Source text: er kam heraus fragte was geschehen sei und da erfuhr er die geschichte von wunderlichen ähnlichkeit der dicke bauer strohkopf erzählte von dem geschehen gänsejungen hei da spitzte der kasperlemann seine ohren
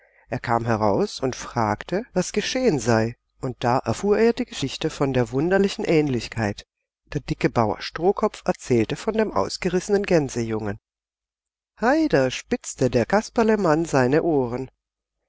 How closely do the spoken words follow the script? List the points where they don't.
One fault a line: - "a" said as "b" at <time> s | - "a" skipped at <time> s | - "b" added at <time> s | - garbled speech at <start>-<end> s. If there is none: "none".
- "und" added at 1.2 s
- "der" added at 5.1 s
- "geschehen" said as "ausgerissenen" at 9.3 s